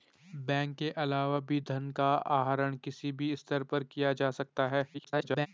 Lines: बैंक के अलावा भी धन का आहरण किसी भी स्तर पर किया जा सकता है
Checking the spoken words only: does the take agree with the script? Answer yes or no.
no